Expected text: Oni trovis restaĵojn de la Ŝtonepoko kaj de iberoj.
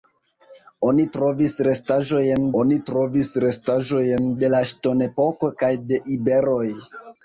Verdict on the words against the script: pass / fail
fail